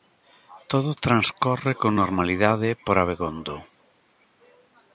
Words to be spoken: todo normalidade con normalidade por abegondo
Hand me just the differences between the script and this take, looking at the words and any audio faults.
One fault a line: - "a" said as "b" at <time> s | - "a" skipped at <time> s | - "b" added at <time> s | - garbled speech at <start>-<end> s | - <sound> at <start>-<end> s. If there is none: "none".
- "normalidade" said as "transcorre" at 1.1 s